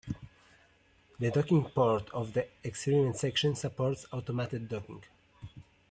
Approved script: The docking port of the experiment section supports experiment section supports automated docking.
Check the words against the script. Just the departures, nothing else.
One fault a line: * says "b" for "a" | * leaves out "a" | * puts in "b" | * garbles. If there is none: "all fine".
* leaves out "experiment section supports"